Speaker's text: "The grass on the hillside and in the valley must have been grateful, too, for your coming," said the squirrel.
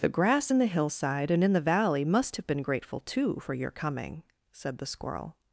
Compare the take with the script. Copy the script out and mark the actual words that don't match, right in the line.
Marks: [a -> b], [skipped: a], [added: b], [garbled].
"The grass [on -> in] the hillside and in the valley must have been grateful, too, for your coming," said the squirrel.